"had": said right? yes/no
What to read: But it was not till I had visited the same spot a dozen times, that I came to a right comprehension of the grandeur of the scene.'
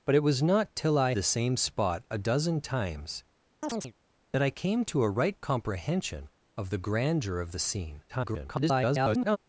no